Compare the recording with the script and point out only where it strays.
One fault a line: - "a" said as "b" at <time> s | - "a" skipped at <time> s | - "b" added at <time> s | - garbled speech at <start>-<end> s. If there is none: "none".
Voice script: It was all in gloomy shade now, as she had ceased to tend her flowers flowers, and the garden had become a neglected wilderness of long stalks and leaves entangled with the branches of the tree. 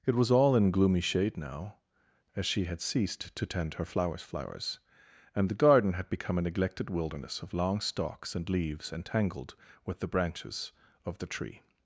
none